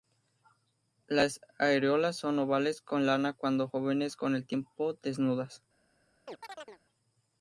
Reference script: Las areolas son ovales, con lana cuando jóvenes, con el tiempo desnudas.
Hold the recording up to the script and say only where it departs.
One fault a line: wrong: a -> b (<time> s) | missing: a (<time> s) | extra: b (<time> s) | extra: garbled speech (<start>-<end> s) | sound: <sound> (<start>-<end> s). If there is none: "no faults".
sound: chirp (6.3-6.8 s)